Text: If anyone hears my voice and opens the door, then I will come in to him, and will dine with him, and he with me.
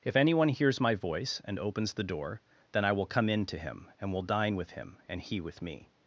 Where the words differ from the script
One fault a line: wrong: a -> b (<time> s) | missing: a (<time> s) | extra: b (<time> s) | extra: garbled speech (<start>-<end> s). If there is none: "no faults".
no faults